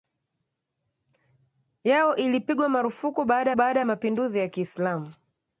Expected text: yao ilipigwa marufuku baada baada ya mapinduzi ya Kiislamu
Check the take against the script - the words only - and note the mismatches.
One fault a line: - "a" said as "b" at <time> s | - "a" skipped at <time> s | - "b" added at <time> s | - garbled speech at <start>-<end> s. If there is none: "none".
none